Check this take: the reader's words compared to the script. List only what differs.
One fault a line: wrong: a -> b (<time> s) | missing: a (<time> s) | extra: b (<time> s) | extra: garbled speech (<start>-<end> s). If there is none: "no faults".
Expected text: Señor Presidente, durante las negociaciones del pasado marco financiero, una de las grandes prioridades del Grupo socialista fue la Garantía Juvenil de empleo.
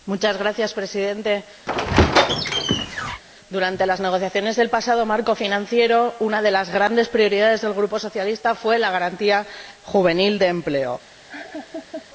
no faults